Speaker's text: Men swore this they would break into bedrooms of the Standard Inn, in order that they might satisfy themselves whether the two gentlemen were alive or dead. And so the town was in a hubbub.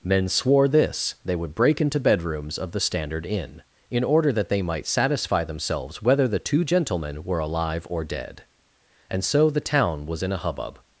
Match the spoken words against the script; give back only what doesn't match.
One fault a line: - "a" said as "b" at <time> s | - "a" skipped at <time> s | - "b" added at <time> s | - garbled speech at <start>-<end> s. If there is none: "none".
none